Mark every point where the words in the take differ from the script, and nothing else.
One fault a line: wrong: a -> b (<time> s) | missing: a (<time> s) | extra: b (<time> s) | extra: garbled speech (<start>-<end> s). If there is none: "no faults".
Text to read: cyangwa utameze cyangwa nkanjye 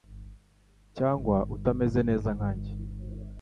wrong: cyangwa -> neza (2.1 s)